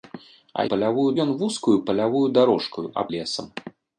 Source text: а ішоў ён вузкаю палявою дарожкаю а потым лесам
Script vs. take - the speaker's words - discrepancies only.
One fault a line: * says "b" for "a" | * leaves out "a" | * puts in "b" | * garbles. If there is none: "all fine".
* says "палявою" for "ішоў"
* leaves out "потым"